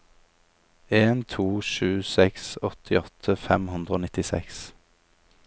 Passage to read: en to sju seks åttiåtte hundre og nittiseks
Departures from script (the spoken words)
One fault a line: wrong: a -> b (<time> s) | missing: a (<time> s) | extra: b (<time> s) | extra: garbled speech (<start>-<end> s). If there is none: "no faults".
extra: fem (3.5 s)